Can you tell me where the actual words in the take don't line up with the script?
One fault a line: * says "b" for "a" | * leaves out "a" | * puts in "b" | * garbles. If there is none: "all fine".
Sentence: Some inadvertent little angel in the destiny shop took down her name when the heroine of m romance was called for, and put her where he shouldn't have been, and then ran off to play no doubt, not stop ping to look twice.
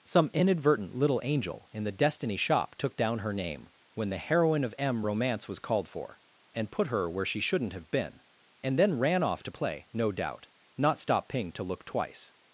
* says "she" for "he"